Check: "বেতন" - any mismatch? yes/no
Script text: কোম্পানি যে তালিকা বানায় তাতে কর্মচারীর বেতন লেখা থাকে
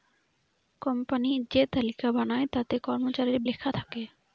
yes